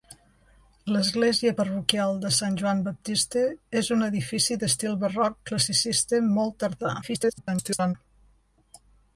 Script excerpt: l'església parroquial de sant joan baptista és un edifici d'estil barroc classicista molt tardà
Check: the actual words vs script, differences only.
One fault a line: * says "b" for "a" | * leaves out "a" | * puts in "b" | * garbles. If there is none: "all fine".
* garbles